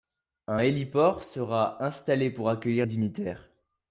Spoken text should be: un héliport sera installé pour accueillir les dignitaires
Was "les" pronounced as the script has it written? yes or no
no